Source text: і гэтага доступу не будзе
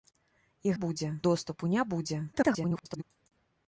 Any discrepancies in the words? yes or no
yes